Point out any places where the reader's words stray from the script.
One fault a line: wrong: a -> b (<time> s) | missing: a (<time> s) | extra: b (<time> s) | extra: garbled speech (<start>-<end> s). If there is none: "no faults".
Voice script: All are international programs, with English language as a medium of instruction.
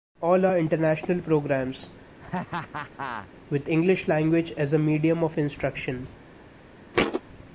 no faults